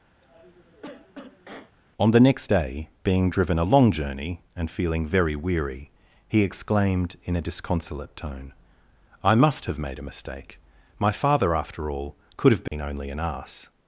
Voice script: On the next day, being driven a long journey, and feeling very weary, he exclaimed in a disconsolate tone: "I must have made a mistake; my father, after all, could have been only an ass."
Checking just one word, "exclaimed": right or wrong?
right